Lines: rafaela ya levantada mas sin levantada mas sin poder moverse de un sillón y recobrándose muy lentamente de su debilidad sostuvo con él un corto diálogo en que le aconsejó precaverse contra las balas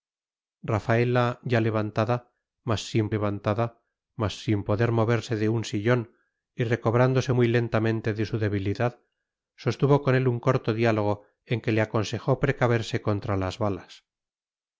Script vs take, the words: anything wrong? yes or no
no